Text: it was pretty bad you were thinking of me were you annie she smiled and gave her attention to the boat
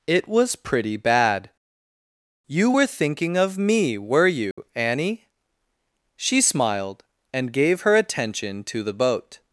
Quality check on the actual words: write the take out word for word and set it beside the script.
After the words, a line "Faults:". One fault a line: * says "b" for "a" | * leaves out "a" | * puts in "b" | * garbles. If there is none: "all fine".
it was pretty bad you were thinking of me were you annie she smiled and gave her attention to the boat
Faults:
all fine